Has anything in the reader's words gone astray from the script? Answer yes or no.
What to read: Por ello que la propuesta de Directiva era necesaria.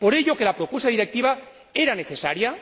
no